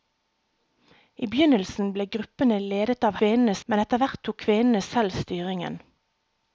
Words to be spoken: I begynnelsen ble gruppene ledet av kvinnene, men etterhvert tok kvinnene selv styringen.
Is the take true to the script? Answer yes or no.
yes